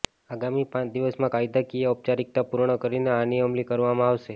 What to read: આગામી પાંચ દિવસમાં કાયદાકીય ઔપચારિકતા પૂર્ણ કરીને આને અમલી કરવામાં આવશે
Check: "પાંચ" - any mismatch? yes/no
no